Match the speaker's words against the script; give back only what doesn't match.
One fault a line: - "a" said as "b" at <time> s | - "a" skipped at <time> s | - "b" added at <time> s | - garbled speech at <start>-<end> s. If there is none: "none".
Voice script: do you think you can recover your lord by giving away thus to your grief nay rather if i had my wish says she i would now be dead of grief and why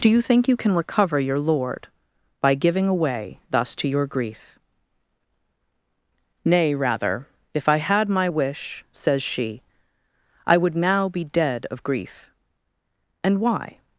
none